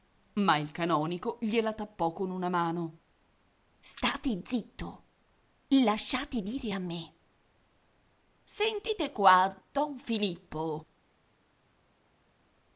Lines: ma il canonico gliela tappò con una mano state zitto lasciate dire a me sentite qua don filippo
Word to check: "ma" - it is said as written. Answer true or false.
true